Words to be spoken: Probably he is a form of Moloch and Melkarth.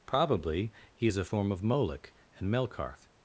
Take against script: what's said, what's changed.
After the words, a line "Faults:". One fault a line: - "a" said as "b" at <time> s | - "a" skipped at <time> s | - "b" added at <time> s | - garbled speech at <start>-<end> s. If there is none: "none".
Probably he is a form of Moloch and Melkarth.
Faults:
none